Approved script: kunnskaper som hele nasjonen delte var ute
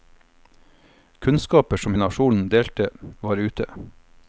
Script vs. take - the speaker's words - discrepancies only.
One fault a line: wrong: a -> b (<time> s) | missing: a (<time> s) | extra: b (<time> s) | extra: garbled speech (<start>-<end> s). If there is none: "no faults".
missing: hele (1.9 s)